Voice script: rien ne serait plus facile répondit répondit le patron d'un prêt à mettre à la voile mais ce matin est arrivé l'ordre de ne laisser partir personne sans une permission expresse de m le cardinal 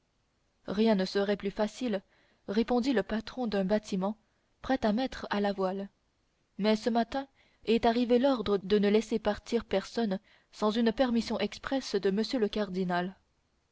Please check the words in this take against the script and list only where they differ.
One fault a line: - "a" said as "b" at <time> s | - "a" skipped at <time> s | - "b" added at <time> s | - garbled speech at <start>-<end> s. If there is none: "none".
- "répondit" skipped at 2.9 s
- "bâtiment" added at 3.7 s